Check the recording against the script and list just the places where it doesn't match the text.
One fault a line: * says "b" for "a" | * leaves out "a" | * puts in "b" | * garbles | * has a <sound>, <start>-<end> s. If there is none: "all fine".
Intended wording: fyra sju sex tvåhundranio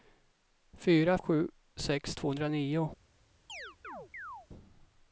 * has a chirp, 3.5-4.5 s